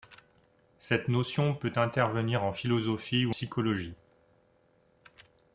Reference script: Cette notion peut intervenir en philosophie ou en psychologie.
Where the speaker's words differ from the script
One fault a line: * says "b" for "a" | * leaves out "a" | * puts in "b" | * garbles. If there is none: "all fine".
* leaves out "en"